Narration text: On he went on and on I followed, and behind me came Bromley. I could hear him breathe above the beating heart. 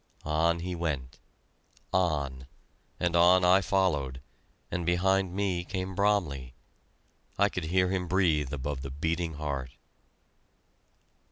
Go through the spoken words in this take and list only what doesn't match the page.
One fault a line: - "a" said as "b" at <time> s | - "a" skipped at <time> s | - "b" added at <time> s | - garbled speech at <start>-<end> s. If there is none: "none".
none